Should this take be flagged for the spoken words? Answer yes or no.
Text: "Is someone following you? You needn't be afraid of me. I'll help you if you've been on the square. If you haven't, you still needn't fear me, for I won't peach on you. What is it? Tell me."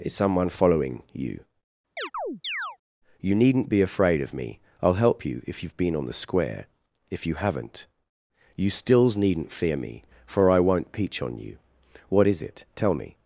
yes